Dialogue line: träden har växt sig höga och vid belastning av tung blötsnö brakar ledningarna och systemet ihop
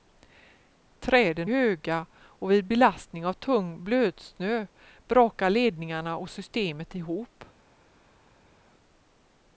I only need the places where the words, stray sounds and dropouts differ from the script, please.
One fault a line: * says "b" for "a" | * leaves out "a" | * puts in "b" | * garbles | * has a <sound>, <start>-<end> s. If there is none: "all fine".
* leaves out "har växt sig"